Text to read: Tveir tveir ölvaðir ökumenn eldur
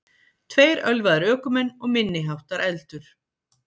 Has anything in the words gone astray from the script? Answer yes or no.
yes